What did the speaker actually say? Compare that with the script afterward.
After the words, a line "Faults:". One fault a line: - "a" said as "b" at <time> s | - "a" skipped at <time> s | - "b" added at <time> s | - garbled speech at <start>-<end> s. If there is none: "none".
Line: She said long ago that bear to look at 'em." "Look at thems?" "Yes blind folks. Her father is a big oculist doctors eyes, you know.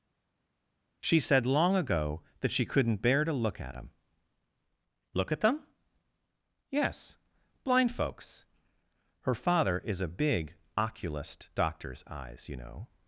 She said long ago that she couldn't bear to look at 'em." "Look at them?" "Yes blind folks. Her father is a big oculist doctors eyes, you know.
Faults:
- "she couldn't" added at 2.5 s
- "thems" said as "them" at 5.4 s